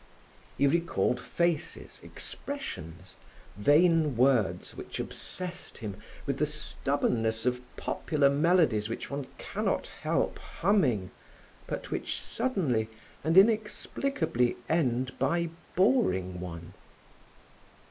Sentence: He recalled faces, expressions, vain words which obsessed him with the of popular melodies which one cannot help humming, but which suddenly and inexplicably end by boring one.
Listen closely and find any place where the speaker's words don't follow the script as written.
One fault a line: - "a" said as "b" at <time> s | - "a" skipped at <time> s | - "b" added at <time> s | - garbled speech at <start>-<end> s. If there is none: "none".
- "stubbornness" added at 6.5 s